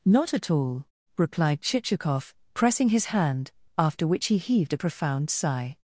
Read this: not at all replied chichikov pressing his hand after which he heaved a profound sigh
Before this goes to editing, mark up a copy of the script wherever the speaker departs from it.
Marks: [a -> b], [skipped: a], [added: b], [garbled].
not at all replied chichikov pressing his hand after which he heaved a profound sigh